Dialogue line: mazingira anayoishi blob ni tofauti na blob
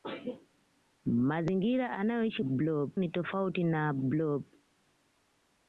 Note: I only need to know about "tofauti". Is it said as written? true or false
true